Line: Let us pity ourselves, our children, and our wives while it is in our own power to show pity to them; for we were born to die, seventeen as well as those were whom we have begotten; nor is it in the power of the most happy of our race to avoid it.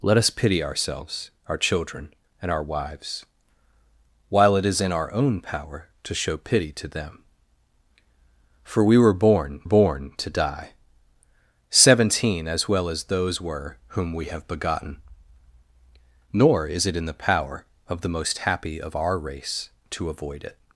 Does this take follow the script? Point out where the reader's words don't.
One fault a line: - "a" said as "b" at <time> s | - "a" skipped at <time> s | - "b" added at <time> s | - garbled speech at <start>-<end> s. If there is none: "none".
- "born" added at 9.6 s